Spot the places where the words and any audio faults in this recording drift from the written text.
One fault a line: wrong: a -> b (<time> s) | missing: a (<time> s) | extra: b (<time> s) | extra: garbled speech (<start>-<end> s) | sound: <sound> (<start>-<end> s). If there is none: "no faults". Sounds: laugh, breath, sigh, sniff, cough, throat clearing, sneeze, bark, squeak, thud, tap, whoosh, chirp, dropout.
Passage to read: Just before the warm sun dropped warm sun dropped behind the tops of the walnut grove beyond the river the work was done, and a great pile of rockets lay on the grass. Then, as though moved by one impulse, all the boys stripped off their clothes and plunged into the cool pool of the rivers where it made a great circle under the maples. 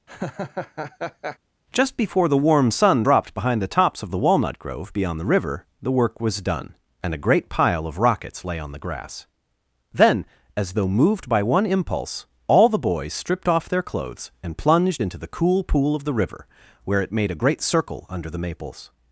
sound: laugh (0.1-1.4 s)
missing: warm sun dropped (3.3 s)
wrong: rivers -> river (16.1 s)